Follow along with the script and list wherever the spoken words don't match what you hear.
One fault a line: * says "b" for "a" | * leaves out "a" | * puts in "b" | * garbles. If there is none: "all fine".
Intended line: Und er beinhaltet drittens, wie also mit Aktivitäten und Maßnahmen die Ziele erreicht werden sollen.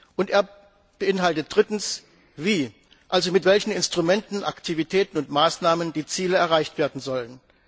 * puts in "welchen Instrumenten"